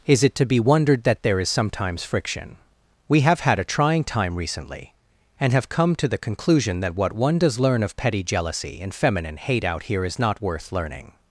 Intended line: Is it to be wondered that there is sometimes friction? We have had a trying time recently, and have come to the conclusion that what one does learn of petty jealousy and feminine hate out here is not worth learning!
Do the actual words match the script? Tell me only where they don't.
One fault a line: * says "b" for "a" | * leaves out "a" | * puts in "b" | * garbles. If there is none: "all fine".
all fine